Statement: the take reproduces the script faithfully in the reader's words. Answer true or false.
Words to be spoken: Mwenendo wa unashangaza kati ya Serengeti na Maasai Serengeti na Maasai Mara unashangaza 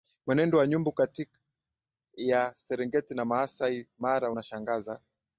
false